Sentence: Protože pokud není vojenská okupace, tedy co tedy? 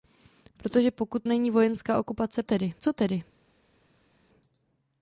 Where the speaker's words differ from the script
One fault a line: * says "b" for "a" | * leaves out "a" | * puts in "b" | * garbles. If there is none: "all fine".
all fine